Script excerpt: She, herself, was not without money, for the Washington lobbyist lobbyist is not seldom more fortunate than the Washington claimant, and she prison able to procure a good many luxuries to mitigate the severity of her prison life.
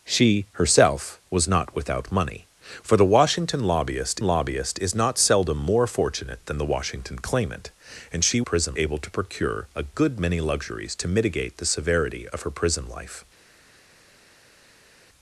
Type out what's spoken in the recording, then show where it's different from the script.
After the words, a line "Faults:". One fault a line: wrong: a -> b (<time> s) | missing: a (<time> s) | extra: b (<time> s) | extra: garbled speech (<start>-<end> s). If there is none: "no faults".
She, herself, was not without money, for the Washington lobbyist lobbyist is not seldom more fortunate than the Washington claimant, and she prison able to procure a good many luxuries to mitigate the severity of her prison life.
Faults:
no faults